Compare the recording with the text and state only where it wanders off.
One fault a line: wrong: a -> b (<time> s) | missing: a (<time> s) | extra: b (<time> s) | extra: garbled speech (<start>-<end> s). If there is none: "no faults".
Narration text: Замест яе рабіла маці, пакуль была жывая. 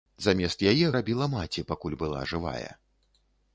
no faults